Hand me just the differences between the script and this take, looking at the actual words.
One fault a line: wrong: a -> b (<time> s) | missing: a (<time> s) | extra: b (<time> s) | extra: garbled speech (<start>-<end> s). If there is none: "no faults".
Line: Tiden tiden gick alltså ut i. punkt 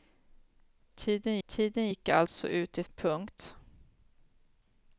no faults